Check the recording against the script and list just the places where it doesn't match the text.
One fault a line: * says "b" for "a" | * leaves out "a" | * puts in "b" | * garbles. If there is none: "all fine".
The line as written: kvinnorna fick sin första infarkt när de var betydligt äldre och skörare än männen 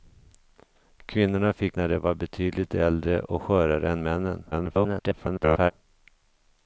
* leaves out "sin första infarkt"
* garbles